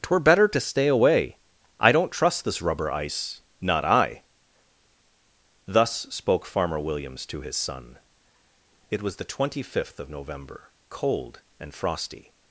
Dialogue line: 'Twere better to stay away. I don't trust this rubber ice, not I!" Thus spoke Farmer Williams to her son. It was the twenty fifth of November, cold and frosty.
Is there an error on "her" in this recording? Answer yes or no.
yes